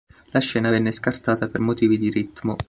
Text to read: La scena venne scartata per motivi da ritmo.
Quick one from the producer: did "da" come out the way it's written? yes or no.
no